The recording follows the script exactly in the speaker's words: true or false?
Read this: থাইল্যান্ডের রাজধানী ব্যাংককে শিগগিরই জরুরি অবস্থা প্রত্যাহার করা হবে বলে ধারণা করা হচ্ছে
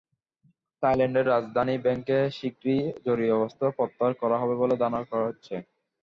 true